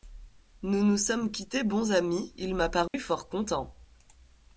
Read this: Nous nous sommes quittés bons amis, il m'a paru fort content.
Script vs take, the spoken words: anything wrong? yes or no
no